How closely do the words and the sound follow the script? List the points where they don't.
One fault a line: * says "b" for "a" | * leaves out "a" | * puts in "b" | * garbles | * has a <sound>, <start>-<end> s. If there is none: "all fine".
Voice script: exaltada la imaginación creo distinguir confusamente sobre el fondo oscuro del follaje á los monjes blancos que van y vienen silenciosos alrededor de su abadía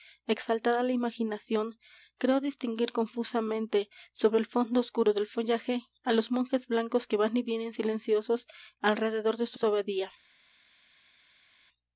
* puts in "su"